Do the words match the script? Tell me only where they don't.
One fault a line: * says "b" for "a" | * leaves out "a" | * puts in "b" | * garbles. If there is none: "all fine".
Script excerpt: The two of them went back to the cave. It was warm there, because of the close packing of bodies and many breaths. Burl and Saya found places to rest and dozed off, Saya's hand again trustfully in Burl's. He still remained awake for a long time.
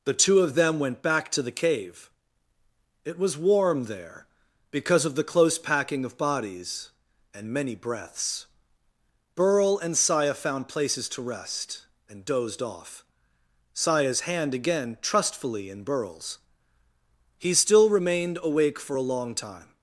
all fine